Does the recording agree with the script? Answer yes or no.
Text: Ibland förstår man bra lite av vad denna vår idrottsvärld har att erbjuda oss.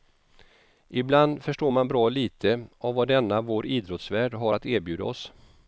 yes